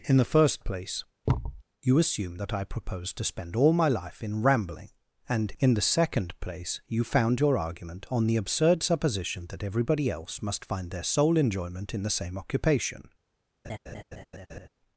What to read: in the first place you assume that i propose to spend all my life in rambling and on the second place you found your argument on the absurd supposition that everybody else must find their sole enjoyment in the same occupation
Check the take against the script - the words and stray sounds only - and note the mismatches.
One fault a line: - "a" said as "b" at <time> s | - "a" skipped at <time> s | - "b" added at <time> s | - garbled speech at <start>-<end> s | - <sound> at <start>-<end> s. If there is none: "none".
- thud at 1.3-1.6 s
- "on" said as "in" at 5.6 s
- laugh at 13.6-14.7 s